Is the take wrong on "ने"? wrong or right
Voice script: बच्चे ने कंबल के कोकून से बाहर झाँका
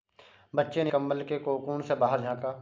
right